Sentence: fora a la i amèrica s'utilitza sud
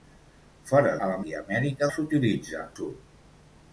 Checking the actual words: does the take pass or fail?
pass